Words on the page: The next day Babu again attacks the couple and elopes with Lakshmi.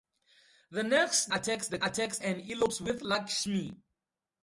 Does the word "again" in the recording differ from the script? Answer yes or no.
yes